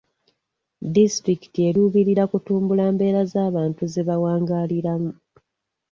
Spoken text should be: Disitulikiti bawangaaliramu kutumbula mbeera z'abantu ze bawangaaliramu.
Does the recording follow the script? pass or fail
fail